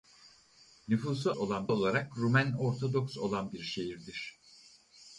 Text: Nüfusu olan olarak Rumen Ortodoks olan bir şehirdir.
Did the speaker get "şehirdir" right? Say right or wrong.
right